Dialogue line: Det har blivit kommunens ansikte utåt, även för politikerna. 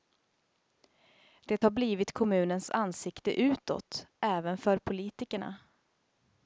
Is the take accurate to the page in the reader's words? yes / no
yes